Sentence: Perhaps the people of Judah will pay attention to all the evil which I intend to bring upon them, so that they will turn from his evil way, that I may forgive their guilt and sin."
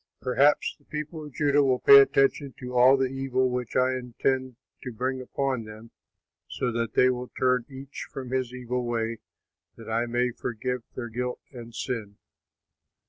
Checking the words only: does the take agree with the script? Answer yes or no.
no